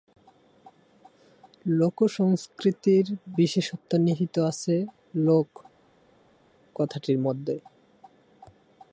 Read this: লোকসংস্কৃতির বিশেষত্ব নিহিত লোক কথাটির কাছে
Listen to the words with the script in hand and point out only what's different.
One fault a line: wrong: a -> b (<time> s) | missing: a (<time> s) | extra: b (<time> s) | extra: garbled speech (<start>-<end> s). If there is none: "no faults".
extra: আছে (4.5 s)
wrong: কাছে -> মধ্যে (7.2 s)